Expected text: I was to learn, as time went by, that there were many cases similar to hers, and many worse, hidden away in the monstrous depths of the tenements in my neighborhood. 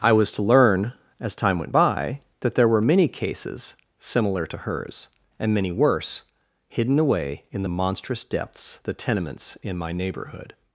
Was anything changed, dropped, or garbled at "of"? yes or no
yes